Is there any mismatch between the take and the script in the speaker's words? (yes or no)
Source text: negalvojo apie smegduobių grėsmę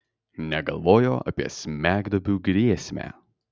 no